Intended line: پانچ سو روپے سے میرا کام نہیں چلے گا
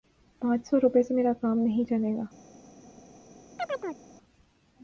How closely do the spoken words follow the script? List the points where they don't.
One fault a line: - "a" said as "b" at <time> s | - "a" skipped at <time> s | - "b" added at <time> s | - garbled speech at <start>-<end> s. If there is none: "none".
none